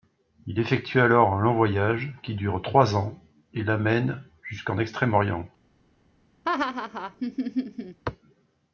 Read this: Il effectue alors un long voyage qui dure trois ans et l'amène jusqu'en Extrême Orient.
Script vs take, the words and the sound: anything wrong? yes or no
yes